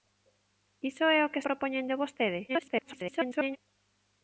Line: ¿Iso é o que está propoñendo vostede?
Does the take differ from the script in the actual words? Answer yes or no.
yes